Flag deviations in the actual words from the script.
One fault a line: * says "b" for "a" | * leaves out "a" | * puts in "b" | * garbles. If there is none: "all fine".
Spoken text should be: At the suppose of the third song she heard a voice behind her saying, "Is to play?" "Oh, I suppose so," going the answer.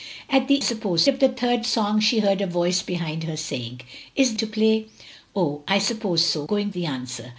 all fine